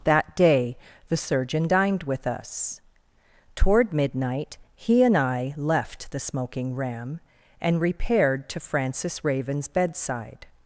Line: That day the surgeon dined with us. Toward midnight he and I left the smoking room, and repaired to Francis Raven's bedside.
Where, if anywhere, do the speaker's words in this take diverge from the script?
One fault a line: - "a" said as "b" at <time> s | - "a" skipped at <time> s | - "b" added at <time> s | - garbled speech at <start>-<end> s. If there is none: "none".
- "room" said as "ram" at 6.8 s